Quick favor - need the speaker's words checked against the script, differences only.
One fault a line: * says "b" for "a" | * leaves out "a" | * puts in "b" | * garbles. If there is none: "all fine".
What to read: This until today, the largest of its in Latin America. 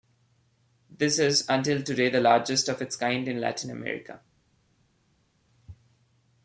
* puts in "is"
* puts in "kind"